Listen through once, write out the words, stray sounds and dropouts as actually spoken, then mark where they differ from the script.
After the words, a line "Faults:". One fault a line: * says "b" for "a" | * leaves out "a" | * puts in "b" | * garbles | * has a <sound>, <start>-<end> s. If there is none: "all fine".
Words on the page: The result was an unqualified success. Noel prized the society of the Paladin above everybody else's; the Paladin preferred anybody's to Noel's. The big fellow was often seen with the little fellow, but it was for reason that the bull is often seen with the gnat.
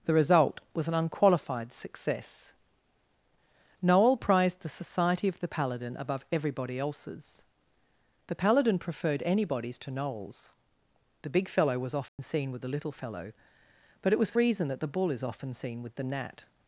The result was an unqualified success. Noel prized the society of the Paladin above everybody else's; the Paladin preferred anybody's to Noel's. The big fellow was often seen with the little fellow, but it was for reason that the bull is often seen with the gnat.
Faults:
* has a dropout, 12.1-12.2 s